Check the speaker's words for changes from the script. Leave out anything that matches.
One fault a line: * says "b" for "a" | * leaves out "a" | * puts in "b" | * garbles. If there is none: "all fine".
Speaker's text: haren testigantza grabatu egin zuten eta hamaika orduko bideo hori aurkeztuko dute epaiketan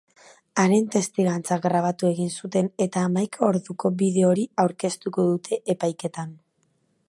all fine